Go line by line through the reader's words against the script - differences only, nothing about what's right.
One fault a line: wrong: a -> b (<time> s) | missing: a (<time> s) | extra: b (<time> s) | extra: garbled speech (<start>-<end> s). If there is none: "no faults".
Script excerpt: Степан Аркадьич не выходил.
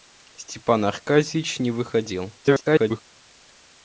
extra: garbled speech (2.4-3.0 s)